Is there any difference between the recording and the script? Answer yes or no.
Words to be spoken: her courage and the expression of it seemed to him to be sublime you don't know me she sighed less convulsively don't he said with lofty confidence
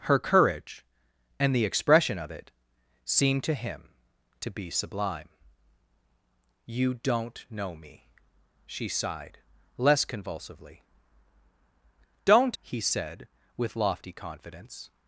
no